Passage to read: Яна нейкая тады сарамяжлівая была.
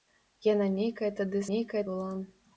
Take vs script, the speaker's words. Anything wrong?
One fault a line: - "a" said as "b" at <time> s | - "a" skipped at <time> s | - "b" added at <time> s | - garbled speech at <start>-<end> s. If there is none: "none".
- "сарамяжлівая" said as "нейкая" at 1.5 s